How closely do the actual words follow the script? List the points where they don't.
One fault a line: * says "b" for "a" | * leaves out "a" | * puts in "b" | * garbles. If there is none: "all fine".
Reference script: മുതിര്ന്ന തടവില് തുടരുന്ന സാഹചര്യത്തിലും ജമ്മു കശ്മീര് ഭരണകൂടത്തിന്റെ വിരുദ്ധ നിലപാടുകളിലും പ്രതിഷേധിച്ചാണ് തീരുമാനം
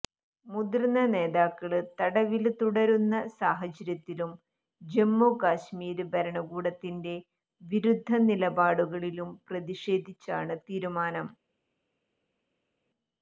* puts in "നേതാക്കള്"